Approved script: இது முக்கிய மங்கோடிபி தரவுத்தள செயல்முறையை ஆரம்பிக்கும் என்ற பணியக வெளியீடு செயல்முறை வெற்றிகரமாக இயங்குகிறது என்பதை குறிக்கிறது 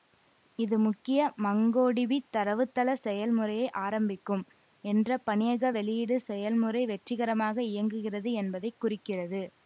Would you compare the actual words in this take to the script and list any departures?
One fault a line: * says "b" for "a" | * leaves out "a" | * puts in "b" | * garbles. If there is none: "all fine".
all fine